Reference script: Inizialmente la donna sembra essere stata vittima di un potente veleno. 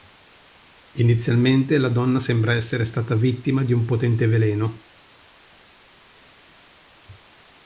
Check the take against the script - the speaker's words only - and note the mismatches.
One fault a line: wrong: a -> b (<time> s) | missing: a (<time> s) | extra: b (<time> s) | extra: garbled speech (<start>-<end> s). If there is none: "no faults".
no faults